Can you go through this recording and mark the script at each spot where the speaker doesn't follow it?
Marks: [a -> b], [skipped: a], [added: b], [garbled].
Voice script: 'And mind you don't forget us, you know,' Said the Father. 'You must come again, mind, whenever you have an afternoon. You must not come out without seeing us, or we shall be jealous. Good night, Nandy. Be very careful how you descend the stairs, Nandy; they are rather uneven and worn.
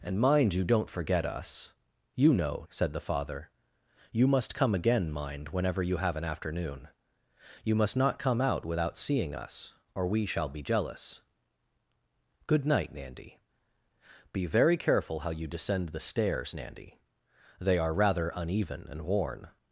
'And mind you don't forget us, you know,' Said the Father. 'You must come again, mind, whenever you have an afternoon. You must not come out without seeing us, or we shall be jealous. Good night, Nandy. Be very careful how you descend the stairs, Nandy; they are rather uneven and worn.